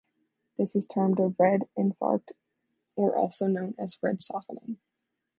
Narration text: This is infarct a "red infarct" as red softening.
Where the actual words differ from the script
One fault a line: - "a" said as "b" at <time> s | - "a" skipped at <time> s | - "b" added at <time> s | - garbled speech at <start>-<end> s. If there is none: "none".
- "infarct" said as "termed" at 0.9 s
- "or also known" added at 3.0 s